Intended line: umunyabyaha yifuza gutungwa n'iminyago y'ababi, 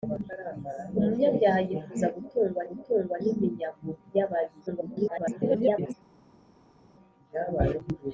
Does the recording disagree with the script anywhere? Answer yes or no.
yes